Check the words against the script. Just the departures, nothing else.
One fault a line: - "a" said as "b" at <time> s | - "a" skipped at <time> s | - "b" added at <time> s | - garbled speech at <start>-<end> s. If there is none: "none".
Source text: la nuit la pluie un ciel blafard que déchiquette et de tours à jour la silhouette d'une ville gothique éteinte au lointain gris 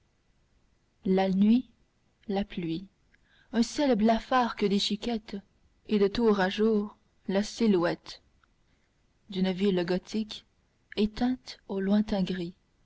none